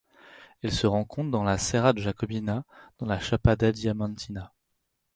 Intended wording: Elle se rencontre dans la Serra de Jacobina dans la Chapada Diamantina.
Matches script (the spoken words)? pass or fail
pass